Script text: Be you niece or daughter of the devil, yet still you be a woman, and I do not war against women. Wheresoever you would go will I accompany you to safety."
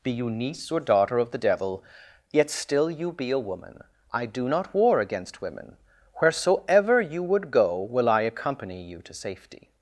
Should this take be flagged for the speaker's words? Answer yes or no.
yes